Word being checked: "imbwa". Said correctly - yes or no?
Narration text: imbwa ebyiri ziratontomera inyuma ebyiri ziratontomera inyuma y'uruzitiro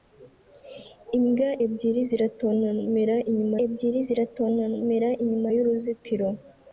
yes